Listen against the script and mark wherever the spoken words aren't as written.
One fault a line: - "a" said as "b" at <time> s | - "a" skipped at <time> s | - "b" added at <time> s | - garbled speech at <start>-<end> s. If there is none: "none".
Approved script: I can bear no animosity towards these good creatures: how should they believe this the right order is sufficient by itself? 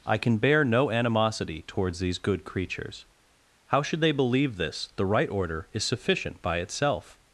none